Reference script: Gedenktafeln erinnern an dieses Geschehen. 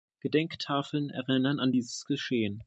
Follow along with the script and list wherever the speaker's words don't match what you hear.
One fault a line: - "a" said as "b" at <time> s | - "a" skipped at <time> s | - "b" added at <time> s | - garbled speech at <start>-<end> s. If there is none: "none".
none